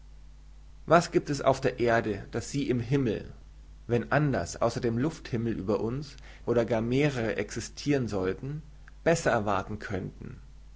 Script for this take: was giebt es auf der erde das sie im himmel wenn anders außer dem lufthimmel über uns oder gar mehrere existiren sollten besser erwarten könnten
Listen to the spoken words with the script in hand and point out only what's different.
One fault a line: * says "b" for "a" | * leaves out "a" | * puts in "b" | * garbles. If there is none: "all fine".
all fine